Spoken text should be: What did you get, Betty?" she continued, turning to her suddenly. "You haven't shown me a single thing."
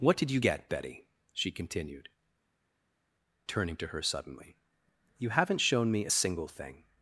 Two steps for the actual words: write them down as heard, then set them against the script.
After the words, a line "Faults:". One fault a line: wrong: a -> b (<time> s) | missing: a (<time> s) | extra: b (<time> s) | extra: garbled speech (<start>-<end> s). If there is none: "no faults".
What did you get, Betty?" she continued, turning to her suddenly. "You haven't shown me a single thing."
Faults:
no faults